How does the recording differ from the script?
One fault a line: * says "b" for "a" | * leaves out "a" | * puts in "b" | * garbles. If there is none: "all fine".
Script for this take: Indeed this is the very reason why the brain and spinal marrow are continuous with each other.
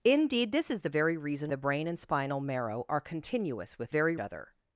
* leaves out "why"
* says "very" for "each"